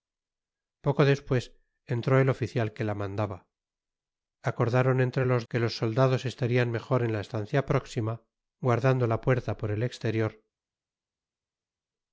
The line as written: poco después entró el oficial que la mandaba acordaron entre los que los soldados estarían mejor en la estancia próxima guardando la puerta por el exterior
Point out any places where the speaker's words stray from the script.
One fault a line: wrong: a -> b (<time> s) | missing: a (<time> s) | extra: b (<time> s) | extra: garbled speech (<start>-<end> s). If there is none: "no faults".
no faults